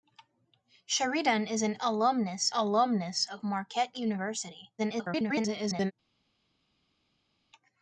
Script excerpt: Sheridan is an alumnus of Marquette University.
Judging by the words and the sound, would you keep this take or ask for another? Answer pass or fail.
fail